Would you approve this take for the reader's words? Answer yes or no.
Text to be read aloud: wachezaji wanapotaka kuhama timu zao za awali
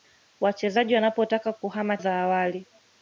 no